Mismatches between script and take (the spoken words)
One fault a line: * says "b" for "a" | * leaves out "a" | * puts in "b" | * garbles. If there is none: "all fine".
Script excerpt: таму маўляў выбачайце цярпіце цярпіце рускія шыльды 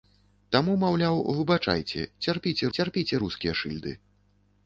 all fine